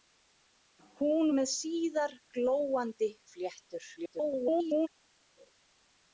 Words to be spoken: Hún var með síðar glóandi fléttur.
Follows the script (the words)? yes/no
no